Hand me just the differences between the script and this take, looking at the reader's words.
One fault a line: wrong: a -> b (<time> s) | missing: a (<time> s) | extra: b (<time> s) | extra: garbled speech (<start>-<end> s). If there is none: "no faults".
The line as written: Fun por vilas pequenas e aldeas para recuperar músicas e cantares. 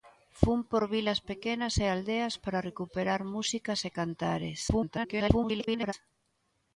extra: garbled speech (4.7-5.9 s)